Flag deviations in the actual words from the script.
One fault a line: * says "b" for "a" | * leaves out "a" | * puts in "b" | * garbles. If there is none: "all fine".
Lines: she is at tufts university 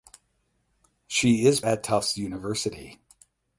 all fine